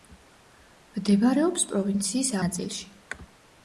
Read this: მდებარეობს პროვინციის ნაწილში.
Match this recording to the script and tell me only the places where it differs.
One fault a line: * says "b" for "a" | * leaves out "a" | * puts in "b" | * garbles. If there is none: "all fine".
all fine